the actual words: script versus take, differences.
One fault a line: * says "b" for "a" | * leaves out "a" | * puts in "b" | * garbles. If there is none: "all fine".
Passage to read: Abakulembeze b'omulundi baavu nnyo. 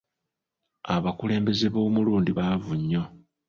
all fine